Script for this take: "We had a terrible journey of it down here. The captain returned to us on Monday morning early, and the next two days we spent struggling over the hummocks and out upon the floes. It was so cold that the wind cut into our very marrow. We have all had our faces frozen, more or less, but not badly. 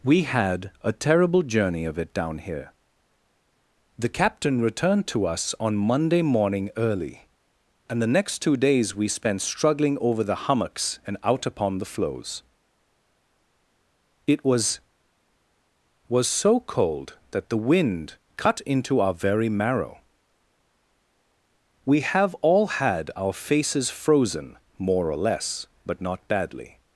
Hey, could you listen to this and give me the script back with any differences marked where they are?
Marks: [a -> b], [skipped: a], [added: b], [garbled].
"We had a terrible journey of it down here. The captain returned to us on Monday morning early, and the next two days we spent struggling over the hummocks and out upon the floes. It was [added: was] so cold that the wind cut into our very marrow. We have all had our faces frozen, more or less, but not badly.